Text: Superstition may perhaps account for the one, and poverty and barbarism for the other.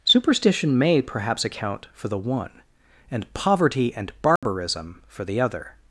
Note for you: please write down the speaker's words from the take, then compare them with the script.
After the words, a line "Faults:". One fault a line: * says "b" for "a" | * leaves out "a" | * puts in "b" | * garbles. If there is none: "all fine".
Superstition may perhaps account for the one, and poverty and barbarism for the other.
Faults:
all fine